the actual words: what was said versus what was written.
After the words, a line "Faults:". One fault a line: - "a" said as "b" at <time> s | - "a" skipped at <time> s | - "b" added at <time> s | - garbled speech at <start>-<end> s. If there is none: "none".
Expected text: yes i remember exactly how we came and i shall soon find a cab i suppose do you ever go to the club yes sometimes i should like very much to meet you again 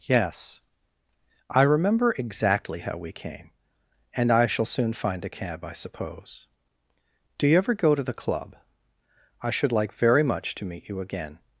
yes i remember exactly how we came and i shall soon find a cab i suppose do you ever go to the club i should like very much to meet you again
Faults:
- "yes sometimes" skipped at 8.6 s